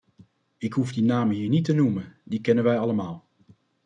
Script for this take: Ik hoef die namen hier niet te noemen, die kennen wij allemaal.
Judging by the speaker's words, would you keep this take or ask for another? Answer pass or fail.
pass